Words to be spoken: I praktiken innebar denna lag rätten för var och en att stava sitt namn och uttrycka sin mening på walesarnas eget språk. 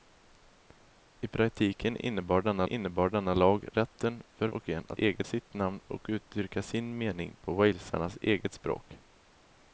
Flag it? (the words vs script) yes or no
yes